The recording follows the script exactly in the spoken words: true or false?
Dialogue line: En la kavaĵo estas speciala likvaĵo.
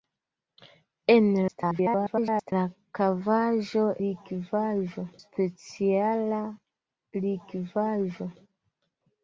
false